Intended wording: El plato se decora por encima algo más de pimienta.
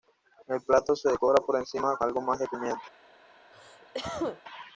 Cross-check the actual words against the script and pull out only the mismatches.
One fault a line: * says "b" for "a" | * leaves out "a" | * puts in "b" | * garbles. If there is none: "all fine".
all fine